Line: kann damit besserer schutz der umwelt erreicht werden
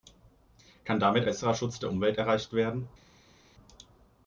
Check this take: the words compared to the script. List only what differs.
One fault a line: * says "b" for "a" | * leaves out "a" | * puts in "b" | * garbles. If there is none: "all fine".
all fine